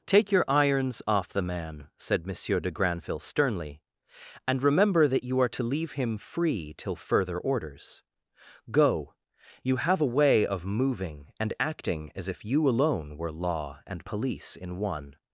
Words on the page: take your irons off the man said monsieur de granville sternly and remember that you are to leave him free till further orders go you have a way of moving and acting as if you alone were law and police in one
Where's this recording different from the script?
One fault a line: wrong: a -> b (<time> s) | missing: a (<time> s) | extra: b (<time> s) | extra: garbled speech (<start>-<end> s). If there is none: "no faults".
no faults